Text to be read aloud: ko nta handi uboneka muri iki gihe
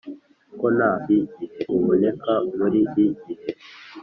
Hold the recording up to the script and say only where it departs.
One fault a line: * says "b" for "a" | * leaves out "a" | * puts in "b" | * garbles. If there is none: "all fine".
* says "gihe" for "handi"
* leaves out "iki"